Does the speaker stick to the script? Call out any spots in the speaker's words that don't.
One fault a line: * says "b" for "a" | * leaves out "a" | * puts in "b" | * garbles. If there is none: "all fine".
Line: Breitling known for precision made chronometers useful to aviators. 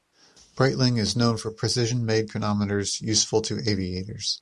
* puts in "is"